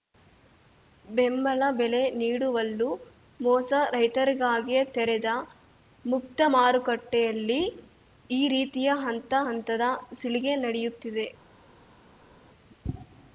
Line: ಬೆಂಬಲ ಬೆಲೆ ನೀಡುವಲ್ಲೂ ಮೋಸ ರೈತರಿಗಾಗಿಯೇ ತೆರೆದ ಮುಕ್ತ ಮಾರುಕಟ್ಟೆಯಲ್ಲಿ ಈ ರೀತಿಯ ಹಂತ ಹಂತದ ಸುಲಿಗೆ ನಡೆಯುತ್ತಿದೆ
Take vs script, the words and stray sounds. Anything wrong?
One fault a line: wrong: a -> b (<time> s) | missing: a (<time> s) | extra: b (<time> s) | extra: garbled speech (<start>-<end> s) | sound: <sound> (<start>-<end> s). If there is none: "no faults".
no faults